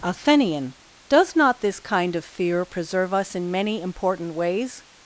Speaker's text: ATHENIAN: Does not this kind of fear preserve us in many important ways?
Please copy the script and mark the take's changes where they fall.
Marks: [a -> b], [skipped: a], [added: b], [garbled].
ATHENIAN: Does not this kind of fear preserve us in many important ways?